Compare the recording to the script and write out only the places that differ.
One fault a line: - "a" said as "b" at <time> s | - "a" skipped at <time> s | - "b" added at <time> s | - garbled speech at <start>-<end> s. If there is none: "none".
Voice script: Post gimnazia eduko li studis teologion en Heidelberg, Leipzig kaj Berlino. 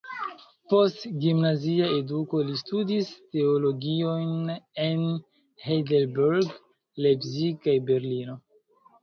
none